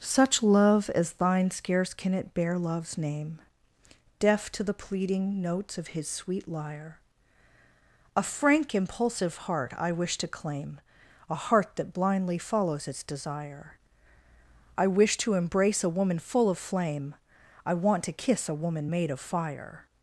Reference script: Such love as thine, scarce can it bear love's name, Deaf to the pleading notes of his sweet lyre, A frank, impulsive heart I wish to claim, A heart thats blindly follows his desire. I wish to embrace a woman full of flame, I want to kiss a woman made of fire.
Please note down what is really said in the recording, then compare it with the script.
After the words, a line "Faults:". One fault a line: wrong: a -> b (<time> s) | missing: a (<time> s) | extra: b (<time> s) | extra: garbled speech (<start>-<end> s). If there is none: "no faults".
Such love as thine, scarce can it bear love's name, Deaf to the pleading notes of his sweet lyre, A frank, impulsive heart I wish to claim, A heart that blindly follows its desire. I wish to embrace a woman full of flame, I want to kiss a woman made of fire.
Faults:
wrong: thats -> that (11.8 s)
wrong: his -> its (12.9 s)